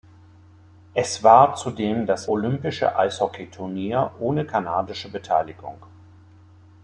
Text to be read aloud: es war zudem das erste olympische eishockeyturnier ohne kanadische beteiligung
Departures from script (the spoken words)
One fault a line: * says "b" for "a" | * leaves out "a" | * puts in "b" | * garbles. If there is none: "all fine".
* leaves out "erste"